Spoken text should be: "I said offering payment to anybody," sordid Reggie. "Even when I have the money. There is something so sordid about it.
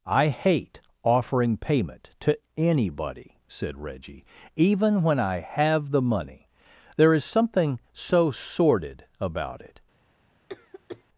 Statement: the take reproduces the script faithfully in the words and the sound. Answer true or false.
false